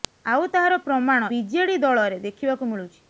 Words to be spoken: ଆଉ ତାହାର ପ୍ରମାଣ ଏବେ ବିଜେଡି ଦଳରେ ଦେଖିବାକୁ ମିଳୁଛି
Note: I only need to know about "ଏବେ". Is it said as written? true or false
false